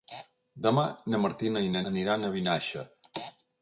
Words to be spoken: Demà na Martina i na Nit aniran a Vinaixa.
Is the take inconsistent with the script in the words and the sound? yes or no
yes